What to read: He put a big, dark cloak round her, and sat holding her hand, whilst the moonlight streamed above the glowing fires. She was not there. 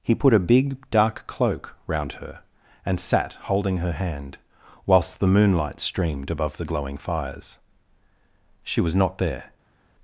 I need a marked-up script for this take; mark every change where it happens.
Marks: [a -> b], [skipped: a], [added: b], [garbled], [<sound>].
He put a big, dark cloak round her, and sat holding her hand, whilst the moonlight streamed above the glowing fires. She was not there.